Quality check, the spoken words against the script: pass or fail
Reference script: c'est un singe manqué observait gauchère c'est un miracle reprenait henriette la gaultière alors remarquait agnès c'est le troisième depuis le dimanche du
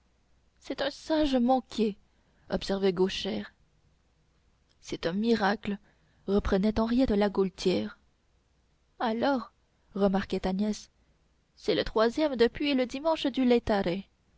pass